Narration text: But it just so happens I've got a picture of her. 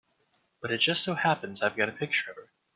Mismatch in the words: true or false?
false